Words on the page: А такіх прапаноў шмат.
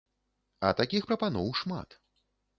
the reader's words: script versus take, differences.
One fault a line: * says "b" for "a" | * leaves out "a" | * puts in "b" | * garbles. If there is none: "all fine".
all fine